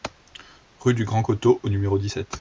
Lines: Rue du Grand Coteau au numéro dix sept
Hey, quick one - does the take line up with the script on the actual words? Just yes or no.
yes